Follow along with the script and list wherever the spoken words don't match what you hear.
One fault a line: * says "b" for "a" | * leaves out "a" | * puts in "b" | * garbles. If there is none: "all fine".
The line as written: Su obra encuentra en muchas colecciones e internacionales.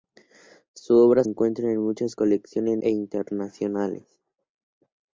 all fine